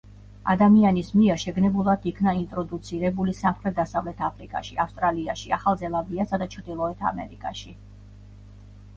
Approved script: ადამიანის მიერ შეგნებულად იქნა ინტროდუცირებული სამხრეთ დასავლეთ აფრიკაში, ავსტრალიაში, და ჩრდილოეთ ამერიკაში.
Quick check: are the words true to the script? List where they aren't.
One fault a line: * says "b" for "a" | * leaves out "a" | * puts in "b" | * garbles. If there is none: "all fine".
* puts in "ახალ ზელანდიასა"